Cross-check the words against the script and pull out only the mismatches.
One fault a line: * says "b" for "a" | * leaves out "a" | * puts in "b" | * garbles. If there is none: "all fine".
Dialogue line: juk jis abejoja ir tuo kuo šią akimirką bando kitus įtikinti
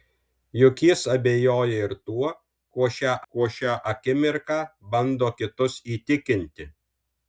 * puts in "kuo šią"